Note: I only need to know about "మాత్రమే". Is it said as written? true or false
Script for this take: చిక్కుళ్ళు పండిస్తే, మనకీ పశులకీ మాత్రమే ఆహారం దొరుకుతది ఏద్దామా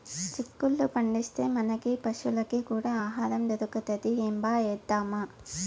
false